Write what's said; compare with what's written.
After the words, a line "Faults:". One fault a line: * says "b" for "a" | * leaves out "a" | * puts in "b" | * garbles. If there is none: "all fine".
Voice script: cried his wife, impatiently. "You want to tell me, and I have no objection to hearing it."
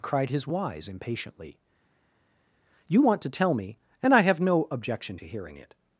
cried his wise, impatiently. "You want to tell me, and I have no objection to hearing it."
Faults:
* says "wise" for "wife"